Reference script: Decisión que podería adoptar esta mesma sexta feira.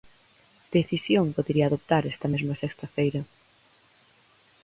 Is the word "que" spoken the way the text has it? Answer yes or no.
no